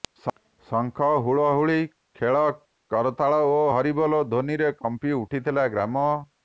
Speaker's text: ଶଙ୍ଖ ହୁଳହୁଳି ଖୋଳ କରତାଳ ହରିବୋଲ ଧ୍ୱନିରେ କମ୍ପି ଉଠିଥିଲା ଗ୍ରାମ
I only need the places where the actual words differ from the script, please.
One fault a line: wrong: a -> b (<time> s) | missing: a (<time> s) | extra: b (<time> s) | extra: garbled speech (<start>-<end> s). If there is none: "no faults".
extra: ଓ (3.5 s)